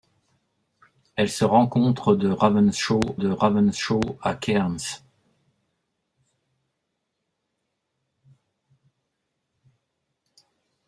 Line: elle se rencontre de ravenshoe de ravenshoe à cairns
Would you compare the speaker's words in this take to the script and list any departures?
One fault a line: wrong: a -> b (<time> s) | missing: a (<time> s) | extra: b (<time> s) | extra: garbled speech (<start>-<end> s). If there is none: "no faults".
no faults